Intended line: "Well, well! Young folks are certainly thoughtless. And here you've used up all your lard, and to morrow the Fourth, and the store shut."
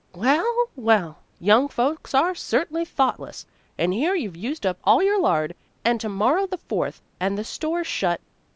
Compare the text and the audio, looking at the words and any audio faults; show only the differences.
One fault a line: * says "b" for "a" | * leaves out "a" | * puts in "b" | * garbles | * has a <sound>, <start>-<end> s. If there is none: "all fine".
all fine